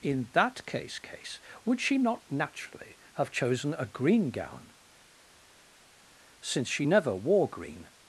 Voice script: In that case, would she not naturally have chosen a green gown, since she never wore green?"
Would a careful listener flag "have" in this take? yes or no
no